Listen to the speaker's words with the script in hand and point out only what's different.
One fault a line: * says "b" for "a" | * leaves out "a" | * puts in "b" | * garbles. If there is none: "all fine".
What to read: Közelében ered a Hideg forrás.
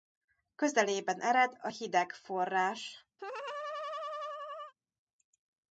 all fine